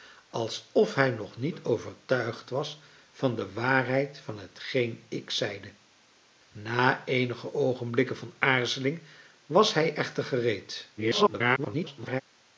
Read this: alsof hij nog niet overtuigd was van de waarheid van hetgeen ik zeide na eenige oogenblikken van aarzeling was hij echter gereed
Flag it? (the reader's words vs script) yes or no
yes